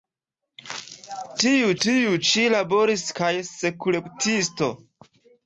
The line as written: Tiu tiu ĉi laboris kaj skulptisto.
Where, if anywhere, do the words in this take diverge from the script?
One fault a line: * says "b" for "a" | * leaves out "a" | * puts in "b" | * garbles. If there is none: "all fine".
all fine